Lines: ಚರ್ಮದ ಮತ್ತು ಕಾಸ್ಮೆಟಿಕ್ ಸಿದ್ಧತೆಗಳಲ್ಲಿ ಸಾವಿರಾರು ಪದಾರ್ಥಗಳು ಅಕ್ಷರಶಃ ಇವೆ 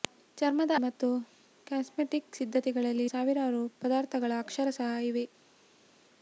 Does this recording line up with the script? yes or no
yes